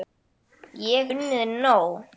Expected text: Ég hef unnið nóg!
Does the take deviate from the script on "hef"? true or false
true